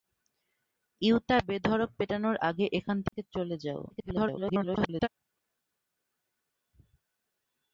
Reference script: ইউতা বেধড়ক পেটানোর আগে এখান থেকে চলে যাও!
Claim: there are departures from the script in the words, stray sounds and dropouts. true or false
true